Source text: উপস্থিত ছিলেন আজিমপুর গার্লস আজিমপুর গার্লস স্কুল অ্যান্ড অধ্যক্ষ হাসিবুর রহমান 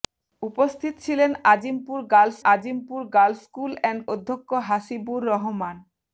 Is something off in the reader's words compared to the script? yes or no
no